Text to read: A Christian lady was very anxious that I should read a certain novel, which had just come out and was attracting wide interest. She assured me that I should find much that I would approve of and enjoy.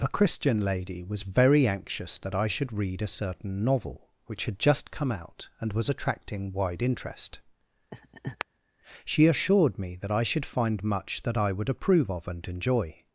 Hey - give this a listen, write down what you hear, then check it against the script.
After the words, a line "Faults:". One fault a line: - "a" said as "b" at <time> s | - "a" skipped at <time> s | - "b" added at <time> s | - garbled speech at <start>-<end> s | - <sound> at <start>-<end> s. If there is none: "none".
A Christian lady was very anxious that I should read a certain novel, which had just come out and was attracting wide interest. She assured me that I should find much that I would approve of and enjoy.
Faults:
- laugh at 7.9-8.5 s